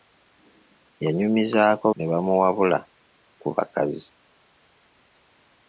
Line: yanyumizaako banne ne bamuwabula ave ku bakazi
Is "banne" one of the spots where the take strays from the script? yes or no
yes